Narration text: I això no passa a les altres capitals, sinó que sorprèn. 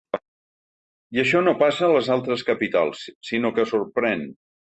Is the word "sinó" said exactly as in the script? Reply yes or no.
yes